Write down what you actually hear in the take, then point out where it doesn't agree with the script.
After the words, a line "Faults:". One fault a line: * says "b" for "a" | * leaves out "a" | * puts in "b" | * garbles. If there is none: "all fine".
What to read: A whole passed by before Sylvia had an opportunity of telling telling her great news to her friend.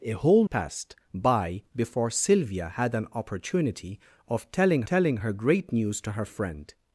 A whole passed by before Sylvia had an opportunity of telling telling her great news to her friend.
Faults:
all fine